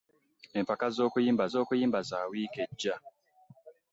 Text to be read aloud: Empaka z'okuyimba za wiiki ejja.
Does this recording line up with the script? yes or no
no